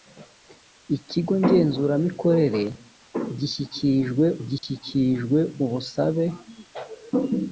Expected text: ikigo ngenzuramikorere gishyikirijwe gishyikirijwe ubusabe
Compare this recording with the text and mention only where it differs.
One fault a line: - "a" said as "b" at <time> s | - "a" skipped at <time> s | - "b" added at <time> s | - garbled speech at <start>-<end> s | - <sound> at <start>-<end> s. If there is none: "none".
- dropout at 4.6-4.6 s